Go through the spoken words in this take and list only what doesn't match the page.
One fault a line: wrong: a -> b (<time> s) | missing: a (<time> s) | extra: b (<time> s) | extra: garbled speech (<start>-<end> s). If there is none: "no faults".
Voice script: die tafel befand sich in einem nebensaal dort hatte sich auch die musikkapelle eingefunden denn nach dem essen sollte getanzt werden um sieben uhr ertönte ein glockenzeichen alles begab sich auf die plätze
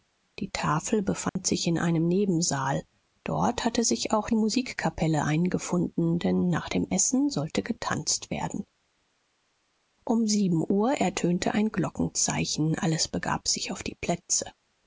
missing: die (4.3 s)